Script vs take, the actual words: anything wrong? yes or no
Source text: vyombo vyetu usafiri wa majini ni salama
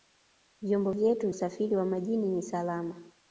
no